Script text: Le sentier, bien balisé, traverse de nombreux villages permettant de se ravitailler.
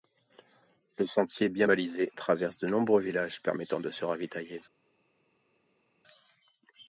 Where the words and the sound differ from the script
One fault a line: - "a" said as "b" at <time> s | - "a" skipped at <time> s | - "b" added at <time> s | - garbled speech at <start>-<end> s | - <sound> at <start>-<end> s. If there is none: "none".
none